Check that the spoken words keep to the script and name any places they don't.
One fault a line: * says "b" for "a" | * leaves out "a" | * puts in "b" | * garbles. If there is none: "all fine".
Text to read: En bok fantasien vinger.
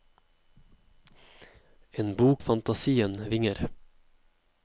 all fine